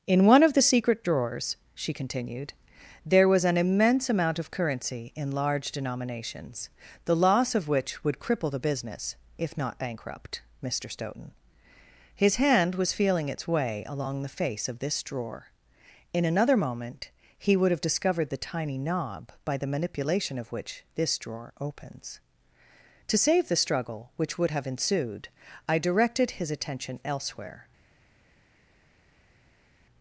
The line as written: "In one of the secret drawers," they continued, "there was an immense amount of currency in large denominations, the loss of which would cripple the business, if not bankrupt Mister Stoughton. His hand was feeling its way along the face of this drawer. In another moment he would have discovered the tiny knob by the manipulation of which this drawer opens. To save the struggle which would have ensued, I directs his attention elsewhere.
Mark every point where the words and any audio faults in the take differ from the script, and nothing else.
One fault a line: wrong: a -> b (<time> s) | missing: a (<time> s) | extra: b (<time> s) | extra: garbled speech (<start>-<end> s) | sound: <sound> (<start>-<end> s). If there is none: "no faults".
wrong: they -> she (1.8 s)
wrong: directs -> directed (25.8 s)